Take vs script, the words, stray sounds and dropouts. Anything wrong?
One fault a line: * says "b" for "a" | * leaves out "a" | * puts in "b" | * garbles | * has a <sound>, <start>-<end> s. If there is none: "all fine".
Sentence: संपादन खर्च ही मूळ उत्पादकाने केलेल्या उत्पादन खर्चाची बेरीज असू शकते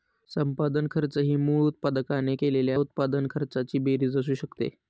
all fine